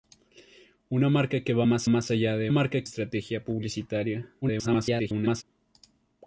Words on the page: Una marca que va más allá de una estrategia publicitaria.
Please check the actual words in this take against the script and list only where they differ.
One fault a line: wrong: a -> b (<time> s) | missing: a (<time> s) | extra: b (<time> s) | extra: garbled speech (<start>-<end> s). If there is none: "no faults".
extra: más (1.9 s)
wrong: una -> marca (2.5 s)
extra: garbled speech (4.4-5.4 s)